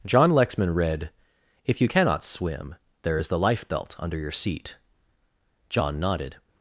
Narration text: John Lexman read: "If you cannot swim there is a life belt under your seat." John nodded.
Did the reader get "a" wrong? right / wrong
wrong